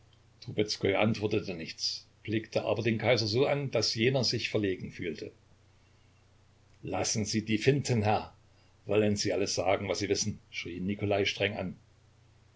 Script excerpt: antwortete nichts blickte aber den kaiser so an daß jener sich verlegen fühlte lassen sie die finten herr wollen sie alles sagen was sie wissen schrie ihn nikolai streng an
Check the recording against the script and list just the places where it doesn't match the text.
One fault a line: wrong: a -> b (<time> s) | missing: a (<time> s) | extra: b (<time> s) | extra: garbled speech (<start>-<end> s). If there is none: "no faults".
no faults